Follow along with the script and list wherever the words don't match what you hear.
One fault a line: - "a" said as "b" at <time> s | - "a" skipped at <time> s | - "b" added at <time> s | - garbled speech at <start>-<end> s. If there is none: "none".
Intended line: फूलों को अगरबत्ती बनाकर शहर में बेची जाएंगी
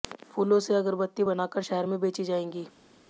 - "को" said as "से" at 0.6 s